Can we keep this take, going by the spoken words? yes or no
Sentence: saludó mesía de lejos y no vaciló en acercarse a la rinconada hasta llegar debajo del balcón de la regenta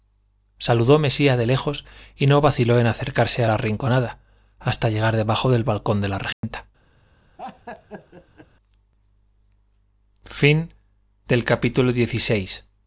yes